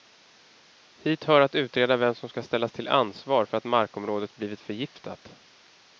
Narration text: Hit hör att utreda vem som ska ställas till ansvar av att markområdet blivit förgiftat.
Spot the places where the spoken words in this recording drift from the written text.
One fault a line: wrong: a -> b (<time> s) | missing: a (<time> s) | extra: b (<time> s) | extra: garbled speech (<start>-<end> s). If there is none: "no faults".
wrong: av -> för (3.5 s)